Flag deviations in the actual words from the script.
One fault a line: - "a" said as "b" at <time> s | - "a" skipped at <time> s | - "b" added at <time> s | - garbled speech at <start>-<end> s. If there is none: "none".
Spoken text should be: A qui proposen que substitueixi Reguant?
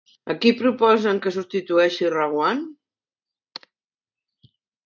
none